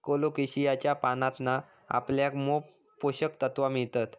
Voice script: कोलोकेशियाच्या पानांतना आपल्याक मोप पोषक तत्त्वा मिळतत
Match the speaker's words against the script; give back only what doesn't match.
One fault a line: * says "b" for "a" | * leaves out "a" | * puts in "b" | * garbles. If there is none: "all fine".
all fine